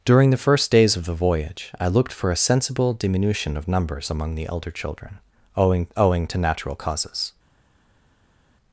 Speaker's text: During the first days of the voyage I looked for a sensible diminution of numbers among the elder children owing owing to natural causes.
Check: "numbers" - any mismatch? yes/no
no